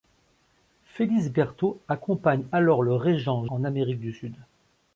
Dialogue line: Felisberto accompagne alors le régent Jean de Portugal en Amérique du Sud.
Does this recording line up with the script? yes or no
no